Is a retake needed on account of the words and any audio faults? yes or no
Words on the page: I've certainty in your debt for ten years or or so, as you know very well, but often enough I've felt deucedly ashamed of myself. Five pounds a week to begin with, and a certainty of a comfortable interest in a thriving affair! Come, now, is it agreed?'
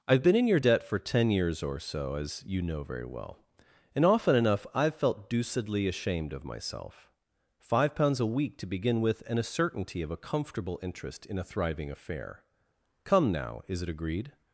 yes